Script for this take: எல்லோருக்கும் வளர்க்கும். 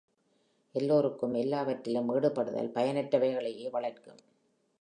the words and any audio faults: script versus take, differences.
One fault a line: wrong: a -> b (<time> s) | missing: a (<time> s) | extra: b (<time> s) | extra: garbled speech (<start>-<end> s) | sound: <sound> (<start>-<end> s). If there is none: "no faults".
extra: எல்லாவற்றிலும் ஈடுபடுதல் பயனற்றவைகளையே (1.3 s)